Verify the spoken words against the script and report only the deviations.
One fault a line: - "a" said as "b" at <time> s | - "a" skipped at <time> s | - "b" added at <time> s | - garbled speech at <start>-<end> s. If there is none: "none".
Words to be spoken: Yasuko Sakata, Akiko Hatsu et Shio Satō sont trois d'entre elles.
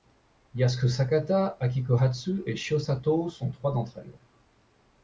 none